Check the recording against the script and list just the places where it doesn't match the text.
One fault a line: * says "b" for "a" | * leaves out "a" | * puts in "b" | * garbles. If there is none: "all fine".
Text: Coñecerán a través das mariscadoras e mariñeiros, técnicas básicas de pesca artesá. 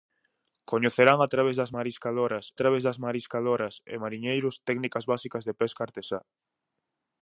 * puts in "través das mariscadoras"